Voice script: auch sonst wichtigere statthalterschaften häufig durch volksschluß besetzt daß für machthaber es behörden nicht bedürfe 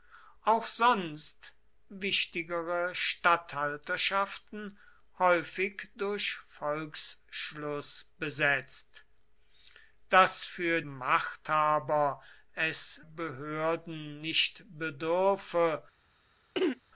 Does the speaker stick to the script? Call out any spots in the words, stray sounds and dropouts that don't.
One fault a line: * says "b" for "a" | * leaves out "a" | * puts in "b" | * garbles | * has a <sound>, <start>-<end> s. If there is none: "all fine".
* has a throat clearing, 16.5-16.8 s